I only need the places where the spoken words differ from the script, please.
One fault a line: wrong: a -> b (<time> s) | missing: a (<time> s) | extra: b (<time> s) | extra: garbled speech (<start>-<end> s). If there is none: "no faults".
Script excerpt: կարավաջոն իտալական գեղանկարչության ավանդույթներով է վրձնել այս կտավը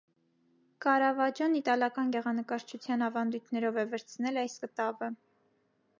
no faults